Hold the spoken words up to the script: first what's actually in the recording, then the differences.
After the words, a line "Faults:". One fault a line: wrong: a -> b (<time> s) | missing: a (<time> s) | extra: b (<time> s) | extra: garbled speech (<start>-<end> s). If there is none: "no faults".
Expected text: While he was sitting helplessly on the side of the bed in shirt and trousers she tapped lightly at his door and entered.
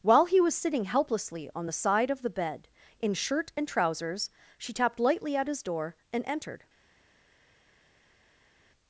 While he was sitting helplessly on the side of the bed in shirt and trousers she tapped lightly at his door and entered.
Faults:
no faults